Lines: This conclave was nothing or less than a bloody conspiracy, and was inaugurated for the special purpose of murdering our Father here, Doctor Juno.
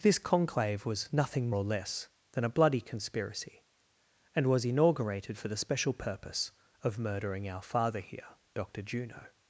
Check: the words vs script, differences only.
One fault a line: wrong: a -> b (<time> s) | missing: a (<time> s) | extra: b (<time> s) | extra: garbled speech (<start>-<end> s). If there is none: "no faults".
no faults